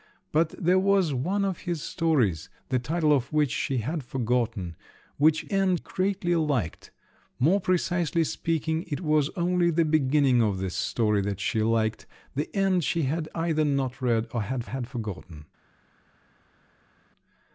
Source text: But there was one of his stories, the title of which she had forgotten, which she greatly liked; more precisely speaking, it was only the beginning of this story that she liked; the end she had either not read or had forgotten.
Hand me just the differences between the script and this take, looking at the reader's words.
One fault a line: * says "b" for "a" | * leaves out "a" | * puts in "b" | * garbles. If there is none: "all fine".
* says "end" for "she"
* puts in "had"